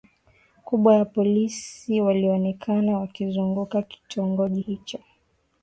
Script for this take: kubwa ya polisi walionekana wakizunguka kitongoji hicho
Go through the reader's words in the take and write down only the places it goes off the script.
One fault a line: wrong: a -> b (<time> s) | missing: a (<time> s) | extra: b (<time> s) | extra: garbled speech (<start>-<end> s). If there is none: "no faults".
no faults